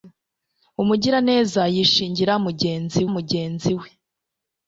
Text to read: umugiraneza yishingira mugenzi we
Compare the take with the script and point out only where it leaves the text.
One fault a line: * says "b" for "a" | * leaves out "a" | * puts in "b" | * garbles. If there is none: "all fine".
* puts in "mugenzi"